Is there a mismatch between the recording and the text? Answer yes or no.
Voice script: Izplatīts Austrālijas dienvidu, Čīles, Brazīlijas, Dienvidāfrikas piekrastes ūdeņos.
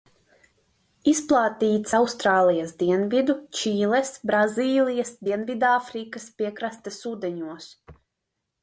no